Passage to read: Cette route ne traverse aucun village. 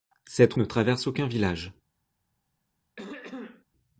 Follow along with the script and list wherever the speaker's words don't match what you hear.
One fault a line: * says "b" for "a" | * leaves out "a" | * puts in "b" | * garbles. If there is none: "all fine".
* leaves out "route"